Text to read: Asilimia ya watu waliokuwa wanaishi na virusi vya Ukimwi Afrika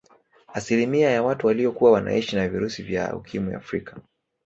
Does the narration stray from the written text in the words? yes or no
no